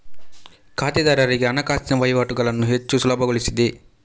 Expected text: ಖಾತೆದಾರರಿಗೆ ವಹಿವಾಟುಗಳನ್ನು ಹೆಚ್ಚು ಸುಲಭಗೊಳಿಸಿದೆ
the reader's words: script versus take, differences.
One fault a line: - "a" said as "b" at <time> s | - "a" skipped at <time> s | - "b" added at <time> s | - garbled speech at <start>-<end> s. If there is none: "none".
- "ಹಣಕಾಸಿನ" added at 1.5 s